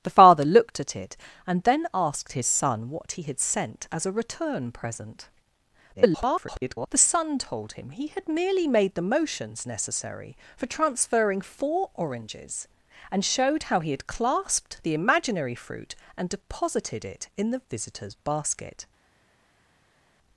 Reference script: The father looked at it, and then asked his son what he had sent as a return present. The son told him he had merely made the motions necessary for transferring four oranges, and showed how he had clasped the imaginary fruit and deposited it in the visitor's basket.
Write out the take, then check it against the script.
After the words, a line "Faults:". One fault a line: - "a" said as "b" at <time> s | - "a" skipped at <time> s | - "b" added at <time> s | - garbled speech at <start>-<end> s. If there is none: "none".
The father looked at it, and then asked his son what he had sent as a return present. [garbled] The son told him he had merely made the motions necessary for transferring four oranges, and showed how he had clasped the imaginary fruit and deposited it in the visitor's basket.
Faults:
- garbled speech at 5.9-6.9 s